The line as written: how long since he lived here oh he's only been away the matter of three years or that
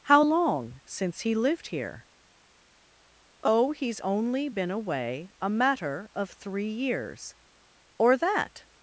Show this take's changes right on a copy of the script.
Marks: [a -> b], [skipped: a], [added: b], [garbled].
how long since he lived here oh he's only been away [the -> a] matter of three years or that